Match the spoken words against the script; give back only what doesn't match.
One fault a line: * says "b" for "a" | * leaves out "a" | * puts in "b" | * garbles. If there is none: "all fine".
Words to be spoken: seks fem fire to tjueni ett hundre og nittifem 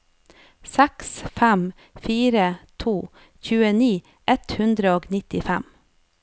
all fine